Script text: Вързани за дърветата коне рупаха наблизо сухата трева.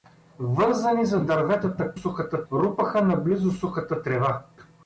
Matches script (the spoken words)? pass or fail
fail